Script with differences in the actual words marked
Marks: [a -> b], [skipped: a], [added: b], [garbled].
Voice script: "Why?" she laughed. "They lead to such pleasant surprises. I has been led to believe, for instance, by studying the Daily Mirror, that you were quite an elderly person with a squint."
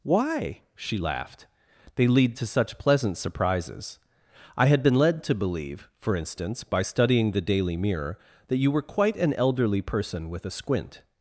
"Why?" she laughed. "They lead to such pleasant surprises. I [has -> had] been led to believe, for instance, by studying the Daily Mirror, that you were quite an elderly person with a squint."